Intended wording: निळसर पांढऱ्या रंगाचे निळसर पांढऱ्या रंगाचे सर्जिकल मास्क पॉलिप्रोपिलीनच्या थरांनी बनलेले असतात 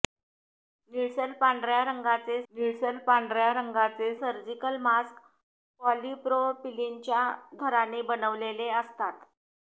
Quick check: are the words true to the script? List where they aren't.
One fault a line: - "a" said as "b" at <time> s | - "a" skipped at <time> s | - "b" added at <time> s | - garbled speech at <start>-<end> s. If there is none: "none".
none